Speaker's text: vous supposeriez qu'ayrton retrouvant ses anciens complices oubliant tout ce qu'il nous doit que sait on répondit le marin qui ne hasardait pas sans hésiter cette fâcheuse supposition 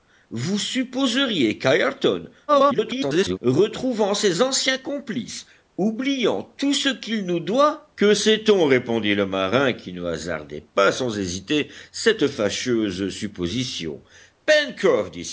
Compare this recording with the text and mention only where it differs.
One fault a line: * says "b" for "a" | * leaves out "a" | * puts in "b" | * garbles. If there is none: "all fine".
* garbles